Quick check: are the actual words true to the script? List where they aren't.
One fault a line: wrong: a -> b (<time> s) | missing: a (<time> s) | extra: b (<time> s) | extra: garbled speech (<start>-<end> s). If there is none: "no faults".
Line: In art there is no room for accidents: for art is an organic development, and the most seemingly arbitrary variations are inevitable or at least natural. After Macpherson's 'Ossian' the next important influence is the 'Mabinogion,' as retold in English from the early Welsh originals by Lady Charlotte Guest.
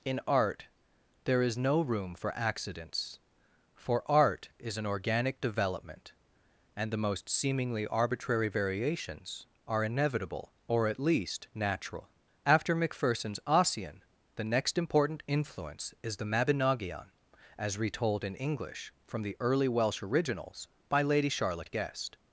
no faults